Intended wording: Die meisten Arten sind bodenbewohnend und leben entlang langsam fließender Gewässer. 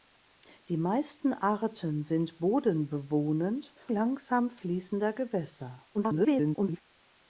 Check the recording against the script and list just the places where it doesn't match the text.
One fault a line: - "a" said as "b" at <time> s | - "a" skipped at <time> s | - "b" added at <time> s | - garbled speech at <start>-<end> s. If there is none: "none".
- "und leben entlang" skipped at 3.8 s
- garbled speech at 5.9-6.8 s